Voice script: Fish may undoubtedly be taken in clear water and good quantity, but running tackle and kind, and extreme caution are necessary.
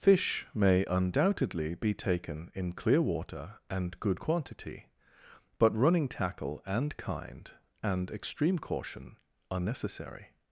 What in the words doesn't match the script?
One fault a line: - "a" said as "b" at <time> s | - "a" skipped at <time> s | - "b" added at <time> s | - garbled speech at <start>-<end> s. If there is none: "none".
none